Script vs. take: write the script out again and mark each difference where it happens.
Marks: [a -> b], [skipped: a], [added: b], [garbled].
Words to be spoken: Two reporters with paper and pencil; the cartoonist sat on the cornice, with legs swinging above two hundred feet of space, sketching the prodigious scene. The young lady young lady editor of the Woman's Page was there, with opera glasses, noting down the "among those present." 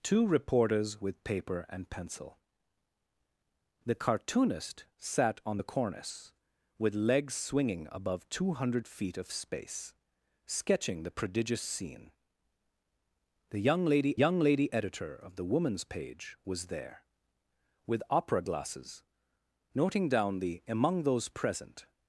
Two reporters with paper and pencil; the cartoonist sat on the cornice, with legs swinging above two hundred feet of space, sketching the prodigious scene. The young lady young lady editor of the Woman's Page was there, with opera glasses, noting down the "among those present."